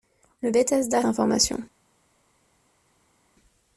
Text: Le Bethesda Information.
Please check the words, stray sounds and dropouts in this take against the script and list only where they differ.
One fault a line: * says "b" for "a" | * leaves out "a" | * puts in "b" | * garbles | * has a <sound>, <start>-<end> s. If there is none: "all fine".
all fine